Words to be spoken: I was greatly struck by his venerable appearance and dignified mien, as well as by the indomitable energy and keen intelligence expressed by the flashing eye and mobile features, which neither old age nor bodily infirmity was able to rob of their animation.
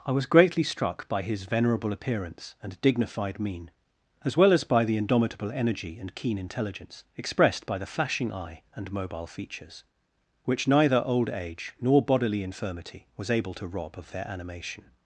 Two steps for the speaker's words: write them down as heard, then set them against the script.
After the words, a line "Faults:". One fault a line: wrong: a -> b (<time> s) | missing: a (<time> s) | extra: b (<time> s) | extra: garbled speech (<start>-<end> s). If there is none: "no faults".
I was greatly struck by his venerable appearance and dignified mien, as well as by the indomitable energy and keen intelligence expressed by the flashing eye and mobile features, which neither old age nor bodily infirmity was able to rob of their animation.
Faults:
no faults